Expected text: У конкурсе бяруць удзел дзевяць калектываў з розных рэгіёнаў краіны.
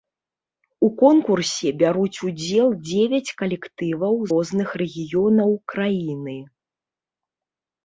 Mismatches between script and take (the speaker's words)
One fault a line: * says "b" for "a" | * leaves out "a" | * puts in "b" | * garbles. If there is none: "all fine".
* leaves out "з"